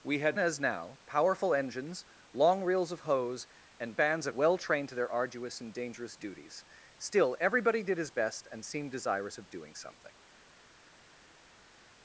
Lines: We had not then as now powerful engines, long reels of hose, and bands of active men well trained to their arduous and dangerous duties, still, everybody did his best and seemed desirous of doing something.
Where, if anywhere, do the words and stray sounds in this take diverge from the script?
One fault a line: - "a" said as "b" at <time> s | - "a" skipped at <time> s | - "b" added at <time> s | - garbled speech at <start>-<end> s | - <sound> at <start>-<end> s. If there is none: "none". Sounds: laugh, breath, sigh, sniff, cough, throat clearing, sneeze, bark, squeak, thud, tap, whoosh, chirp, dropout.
- "not then" skipped at 0.4 s
- "active men" skipped at 4.3 s